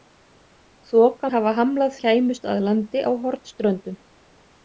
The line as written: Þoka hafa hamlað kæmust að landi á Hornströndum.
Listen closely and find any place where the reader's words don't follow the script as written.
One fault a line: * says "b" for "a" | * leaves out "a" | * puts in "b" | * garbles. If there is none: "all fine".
all fine